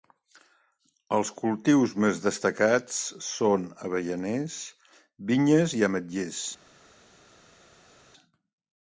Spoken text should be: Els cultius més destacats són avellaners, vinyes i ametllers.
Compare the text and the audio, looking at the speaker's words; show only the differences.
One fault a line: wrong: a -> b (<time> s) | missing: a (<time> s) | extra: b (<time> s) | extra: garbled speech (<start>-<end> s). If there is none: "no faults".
no faults